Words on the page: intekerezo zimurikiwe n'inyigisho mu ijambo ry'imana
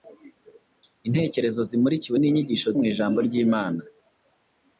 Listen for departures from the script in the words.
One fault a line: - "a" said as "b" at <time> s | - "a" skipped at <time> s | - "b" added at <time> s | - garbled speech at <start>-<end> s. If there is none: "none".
none